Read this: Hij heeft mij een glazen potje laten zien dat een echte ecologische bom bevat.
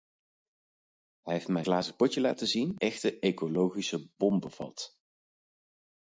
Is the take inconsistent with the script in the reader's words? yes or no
yes